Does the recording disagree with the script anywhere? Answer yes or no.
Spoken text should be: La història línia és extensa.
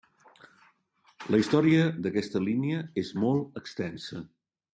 yes